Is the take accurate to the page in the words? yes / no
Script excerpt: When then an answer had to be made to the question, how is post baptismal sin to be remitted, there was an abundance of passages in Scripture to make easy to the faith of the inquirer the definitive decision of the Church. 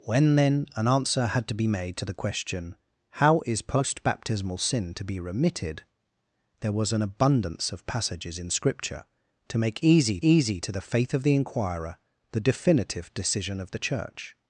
no